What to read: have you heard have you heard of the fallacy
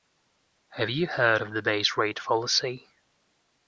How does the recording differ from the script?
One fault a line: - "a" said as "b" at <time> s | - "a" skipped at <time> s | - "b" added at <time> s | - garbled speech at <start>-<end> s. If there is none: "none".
- "have you heard of the" said as "of the base rate" at 1.4 s